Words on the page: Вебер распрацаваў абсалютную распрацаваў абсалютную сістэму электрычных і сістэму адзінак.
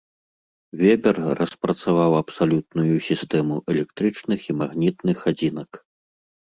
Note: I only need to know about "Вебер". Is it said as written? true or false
true